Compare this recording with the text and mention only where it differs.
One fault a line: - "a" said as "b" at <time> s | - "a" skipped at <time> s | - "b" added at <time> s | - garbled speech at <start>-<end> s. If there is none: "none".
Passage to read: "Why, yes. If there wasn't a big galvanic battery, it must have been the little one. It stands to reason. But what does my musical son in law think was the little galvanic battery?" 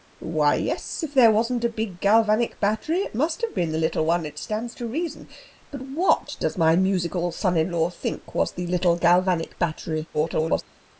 - garbled speech at 10.1-10.6 s